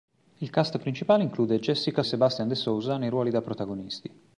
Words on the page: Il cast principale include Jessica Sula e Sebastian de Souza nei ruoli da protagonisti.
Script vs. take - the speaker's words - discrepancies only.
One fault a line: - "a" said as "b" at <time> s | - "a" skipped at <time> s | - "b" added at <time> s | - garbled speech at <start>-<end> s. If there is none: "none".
- "Sula e" skipped at 2.0 s